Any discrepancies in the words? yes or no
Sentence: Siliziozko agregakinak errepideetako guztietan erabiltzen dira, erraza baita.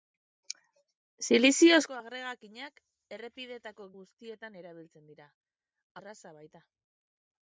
no